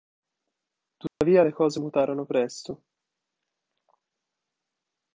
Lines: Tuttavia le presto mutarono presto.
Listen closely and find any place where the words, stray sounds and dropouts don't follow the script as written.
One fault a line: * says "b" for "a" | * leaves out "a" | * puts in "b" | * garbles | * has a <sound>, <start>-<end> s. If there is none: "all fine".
* has a dropout, 1.1-1.2 s
* says "cose" for "presto"